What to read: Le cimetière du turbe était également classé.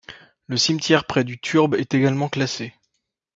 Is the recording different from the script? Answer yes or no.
yes